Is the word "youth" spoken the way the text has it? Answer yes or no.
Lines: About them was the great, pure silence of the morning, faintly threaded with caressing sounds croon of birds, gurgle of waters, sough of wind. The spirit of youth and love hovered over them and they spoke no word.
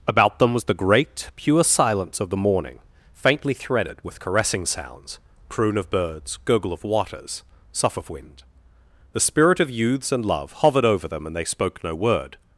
no